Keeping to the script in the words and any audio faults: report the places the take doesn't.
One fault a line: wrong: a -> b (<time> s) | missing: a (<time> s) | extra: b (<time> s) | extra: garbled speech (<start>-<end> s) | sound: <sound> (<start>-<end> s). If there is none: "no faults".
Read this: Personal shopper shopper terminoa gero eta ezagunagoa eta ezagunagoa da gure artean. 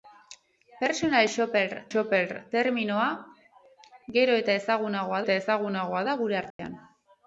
sound: dropout (6.5-6.6 s)